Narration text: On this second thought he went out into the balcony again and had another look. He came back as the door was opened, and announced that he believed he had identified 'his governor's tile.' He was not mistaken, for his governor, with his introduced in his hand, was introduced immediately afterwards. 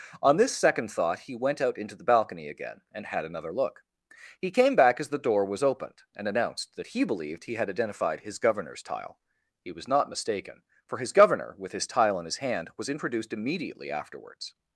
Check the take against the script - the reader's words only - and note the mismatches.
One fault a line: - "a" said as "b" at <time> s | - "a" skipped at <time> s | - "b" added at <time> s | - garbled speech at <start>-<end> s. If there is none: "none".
- "introduced" said as "tile" at 11.8 s